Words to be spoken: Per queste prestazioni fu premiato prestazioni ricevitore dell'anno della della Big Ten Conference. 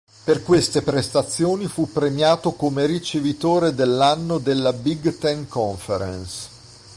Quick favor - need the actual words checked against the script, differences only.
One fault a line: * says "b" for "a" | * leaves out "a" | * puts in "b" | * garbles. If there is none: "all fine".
* says "come" for "prestazioni"
* leaves out "della"